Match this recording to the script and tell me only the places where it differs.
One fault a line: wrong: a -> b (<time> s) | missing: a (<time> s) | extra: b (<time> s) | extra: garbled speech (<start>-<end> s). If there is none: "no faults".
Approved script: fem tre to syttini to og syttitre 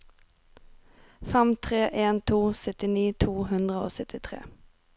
extra: en (2.0 s)
extra: hundre (3.5 s)